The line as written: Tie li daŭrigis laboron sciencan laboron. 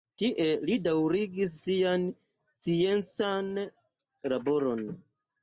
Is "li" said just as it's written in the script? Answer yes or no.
yes